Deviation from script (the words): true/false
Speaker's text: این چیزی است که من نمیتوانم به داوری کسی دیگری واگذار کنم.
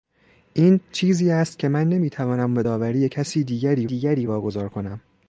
true